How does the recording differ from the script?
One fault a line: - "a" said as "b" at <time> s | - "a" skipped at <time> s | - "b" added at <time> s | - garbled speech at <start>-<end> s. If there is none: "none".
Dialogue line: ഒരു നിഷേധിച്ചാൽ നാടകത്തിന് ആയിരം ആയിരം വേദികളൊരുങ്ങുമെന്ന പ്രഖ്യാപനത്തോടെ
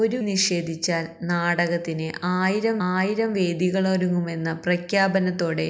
none